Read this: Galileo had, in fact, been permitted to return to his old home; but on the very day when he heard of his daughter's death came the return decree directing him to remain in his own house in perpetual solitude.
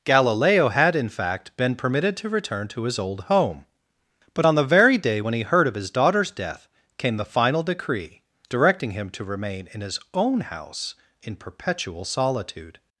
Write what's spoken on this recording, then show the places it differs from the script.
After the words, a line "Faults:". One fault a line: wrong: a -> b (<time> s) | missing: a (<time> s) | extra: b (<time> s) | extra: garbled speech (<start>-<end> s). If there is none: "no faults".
Galileo had, in fact, been permitted to return to his old home; but on the very day when he heard of his daughter's death came the final decree directing him to remain in his own house in perpetual solitude.
Faults:
wrong: return -> final (7.3 s)